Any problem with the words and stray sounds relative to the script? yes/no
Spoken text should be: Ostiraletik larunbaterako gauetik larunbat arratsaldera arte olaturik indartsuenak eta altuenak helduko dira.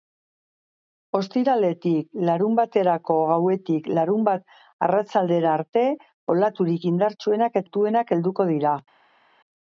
yes